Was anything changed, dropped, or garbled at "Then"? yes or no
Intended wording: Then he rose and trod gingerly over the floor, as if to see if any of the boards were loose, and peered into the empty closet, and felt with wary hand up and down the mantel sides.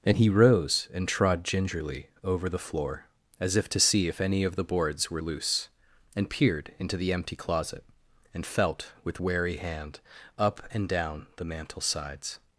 yes